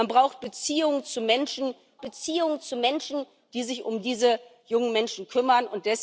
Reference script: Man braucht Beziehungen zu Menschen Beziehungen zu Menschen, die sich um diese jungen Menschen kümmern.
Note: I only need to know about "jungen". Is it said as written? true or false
true